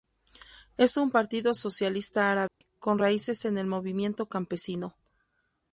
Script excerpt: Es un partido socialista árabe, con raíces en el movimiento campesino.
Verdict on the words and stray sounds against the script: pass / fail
fail